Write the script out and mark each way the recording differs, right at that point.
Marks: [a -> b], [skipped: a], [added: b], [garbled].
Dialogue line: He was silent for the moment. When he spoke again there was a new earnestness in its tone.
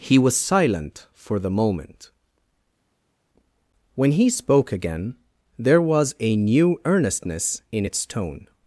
He was silent for the moment. When he spoke again there was a new earnestness in its tone.